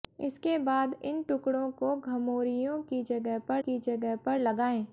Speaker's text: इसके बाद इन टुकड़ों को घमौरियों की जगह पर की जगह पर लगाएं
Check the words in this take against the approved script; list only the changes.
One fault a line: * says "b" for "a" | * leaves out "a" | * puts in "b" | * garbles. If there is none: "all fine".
all fine